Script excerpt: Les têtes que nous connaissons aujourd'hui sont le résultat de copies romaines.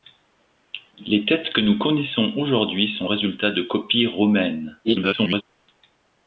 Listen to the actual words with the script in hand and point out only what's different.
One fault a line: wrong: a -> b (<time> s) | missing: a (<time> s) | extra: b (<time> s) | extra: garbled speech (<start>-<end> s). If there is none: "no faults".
missing: le (3.1 s)
extra: garbled speech (4.8-5.4 s)